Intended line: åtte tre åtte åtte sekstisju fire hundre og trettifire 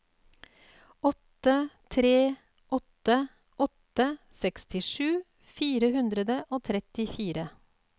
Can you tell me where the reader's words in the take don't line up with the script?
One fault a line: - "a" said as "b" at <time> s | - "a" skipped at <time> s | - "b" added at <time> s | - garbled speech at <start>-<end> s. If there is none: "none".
none